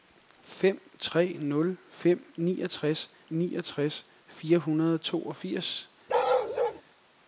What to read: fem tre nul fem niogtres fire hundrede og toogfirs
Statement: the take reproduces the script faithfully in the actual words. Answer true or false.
false